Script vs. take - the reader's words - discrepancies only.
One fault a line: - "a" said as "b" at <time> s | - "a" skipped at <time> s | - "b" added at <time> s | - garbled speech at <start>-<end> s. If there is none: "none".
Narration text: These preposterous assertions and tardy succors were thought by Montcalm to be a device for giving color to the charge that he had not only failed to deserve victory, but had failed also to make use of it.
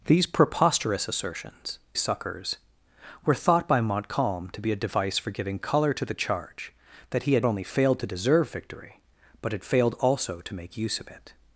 - "and tardy" skipped at 1.8 s
- "not" skipped at 7.5 s